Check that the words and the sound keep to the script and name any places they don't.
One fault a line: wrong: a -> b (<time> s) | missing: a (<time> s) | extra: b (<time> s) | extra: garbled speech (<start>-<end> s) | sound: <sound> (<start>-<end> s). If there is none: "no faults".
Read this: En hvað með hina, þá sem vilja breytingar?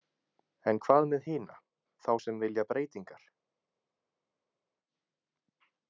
no faults